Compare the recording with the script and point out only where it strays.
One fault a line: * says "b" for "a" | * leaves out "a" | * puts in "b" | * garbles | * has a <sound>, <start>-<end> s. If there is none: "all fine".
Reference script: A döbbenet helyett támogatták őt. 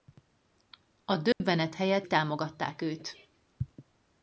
* has a dropout, 1.3-1.4 s